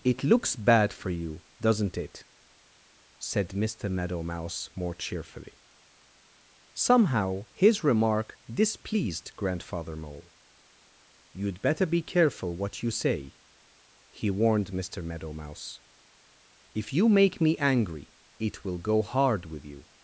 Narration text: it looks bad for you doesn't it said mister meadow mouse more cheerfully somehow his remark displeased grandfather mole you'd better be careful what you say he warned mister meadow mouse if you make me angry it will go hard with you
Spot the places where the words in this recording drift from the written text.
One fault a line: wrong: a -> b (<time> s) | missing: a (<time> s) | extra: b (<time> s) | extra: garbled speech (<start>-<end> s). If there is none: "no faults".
no faults